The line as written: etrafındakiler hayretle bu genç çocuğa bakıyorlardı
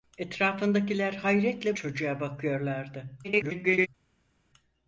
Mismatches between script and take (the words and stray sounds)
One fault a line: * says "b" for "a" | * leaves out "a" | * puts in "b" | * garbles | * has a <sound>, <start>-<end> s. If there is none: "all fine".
* leaves out "bu genç"
* garbles